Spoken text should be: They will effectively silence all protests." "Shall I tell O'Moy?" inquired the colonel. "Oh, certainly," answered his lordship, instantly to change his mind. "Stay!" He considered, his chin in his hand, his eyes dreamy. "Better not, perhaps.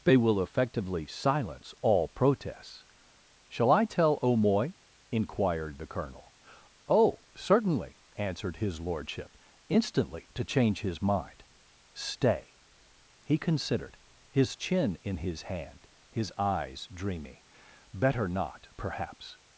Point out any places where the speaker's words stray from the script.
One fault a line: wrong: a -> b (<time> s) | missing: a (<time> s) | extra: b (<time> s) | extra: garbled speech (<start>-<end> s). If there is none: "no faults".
no faults